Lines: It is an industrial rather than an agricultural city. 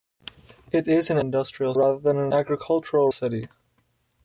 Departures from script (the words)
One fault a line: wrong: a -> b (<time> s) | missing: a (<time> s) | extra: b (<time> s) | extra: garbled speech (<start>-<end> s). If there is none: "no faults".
no faults